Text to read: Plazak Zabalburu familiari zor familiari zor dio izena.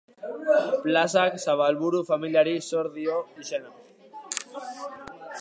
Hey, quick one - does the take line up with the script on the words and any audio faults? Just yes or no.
no